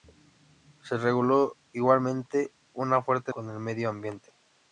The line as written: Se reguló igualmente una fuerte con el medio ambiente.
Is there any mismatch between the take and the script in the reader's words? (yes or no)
no